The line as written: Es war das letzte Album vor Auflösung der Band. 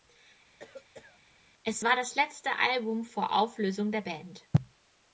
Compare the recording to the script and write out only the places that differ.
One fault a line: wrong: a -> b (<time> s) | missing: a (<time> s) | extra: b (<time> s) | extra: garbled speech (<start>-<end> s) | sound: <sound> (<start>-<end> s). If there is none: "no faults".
sound: cough (0.6-1.2 s)